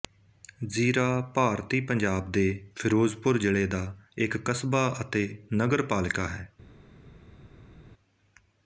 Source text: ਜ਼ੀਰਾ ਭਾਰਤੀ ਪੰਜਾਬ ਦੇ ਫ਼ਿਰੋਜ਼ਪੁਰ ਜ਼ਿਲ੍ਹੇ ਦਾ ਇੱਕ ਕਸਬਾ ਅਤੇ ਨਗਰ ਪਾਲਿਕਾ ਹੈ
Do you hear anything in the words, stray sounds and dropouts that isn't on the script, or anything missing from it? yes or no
no